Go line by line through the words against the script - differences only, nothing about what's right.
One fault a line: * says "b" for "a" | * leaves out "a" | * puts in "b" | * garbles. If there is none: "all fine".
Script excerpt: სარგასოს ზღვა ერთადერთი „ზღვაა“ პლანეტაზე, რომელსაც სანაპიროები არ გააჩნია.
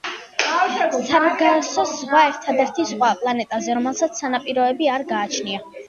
all fine